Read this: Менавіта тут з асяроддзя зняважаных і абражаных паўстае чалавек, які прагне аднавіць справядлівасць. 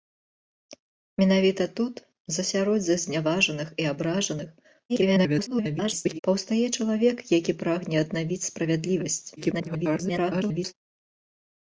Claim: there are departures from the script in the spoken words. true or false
true